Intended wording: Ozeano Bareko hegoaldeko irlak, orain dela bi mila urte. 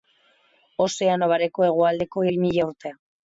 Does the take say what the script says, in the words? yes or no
no